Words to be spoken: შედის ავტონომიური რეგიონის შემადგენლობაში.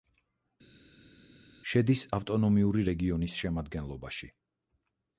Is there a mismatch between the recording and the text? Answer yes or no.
no